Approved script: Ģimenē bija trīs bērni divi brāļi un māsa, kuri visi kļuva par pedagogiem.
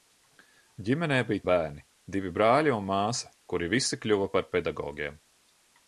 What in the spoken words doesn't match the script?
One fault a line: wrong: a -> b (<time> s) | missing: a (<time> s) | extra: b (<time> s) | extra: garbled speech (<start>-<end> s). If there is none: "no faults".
missing: trīs (1.4 s)